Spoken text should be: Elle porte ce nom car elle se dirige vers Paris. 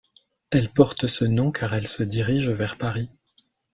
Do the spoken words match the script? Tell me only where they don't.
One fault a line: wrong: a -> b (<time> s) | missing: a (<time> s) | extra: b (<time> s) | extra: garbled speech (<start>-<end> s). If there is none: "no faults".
no faults